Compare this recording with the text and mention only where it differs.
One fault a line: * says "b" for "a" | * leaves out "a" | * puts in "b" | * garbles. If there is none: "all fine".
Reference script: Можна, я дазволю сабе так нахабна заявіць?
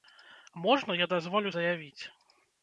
* leaves out "сабе так нахабна"